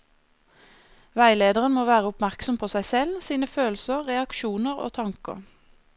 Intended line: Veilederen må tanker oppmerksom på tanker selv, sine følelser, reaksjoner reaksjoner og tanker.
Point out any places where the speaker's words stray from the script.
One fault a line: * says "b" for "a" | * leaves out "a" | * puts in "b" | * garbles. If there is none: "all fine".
* says "være" for "tanker"
* says "seg" for "tanker"
* leaves out "reaksjoner"